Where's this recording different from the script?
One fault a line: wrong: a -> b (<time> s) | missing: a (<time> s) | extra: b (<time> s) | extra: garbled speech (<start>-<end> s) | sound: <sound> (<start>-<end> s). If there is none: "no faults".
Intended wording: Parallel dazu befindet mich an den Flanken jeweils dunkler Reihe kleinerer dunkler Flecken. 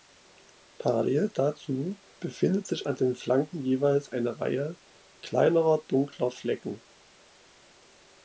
wrong: mich -> sich (2.7 s)
wrong: dunkler -> eine (4.1 s)